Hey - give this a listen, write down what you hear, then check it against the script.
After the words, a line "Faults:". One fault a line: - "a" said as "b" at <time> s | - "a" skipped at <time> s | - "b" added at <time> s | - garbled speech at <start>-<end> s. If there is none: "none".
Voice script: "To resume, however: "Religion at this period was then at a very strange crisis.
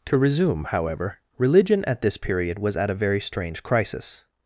"To resume, however: "Religion at this period was at a very strange crisis.
Faults:
- "then" skipped at 2.8 s